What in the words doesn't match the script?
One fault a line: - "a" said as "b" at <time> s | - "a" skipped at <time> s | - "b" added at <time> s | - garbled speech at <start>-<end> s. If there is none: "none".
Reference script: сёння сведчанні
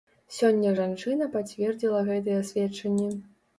- "жанчына пацвердзіла гэтыя" added at 0.8 s